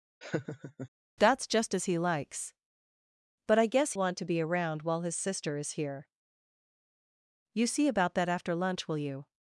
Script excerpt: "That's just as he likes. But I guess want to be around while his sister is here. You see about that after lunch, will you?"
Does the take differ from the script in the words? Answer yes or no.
no